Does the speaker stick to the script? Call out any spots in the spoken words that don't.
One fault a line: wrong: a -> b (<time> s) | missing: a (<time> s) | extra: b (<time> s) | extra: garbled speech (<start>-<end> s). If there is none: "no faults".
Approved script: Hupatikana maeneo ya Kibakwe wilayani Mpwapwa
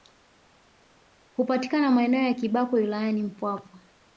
no faults